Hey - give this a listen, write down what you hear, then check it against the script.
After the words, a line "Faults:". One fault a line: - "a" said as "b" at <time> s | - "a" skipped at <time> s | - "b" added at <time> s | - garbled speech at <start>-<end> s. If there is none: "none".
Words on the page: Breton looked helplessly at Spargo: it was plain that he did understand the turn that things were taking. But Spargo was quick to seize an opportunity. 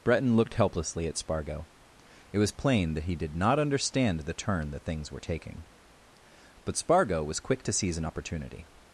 Breton looked helplessly at Spargo: it was plain that he did not understand the turn that things were taking. But Spargo was quick to seize an opportunity.
Faults:
- "not" added at 3.4 s